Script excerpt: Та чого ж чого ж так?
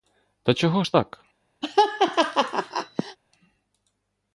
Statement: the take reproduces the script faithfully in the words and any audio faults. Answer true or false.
false